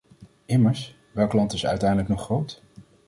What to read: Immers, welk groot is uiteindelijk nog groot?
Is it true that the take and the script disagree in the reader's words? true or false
true